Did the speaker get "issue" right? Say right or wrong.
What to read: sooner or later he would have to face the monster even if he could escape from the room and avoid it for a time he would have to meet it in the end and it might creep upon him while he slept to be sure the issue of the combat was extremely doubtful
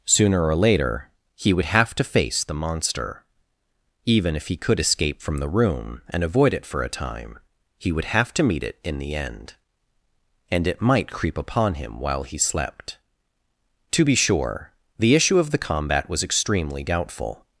right